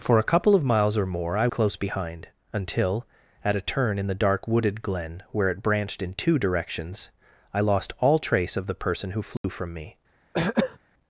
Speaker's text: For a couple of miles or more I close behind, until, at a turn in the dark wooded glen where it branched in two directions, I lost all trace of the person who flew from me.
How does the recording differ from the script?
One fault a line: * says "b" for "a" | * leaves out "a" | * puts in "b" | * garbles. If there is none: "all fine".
all fine